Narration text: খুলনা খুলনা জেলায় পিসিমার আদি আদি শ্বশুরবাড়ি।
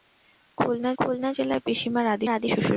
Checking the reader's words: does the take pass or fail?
pass